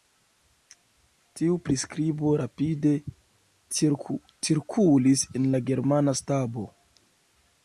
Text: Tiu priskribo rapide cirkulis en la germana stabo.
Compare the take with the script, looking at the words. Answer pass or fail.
pass